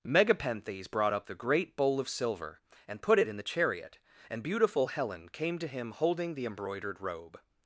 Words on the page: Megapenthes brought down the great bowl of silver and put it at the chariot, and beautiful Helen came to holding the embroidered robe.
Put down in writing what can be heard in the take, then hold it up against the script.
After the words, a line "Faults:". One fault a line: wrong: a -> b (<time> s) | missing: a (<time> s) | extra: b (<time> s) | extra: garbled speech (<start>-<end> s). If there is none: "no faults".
Megapenthes brought up the great bowl of silver and put it in the chariot, and beautiful Helen came to him holding the embroidered robe.
Faults:
wrong: down -> up (1.1 s)
wrong: at -> in (3.3 s)
extra: him (5.7 s)